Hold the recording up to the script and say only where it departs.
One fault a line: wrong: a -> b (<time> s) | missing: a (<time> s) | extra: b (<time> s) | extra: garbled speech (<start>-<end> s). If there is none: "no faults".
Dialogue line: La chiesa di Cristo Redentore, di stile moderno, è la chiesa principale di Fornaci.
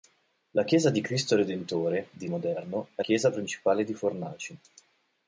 missing: stile (2.3 s)
missing: la (3.0 s)